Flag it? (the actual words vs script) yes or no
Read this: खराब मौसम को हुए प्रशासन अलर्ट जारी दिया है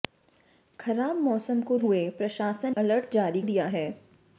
no